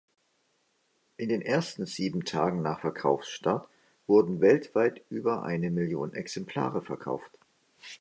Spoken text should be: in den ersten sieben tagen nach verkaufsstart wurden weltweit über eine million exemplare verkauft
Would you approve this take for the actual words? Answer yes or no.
yes